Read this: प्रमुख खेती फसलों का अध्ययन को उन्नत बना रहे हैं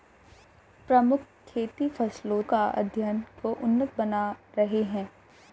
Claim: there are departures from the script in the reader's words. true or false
false